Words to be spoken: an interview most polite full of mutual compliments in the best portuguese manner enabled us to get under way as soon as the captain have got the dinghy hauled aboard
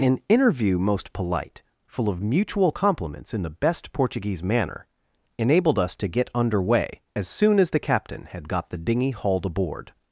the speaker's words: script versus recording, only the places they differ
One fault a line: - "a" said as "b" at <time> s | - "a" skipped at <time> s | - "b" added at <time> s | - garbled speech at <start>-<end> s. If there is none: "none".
- "have" said as "had" at 8.3 s